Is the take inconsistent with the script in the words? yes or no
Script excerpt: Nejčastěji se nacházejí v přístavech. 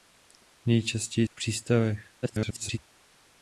yes